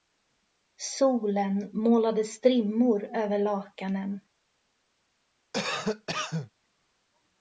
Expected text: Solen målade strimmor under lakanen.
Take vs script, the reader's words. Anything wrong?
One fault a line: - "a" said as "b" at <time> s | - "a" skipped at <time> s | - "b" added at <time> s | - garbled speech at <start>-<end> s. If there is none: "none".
- "under" said as "över" at 3.0 s